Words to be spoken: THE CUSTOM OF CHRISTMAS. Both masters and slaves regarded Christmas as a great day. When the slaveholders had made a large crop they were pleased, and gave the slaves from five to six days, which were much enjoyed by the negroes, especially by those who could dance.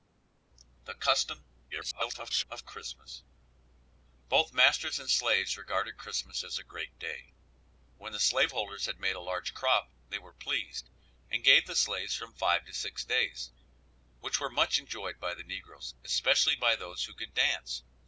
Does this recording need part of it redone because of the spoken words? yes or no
yes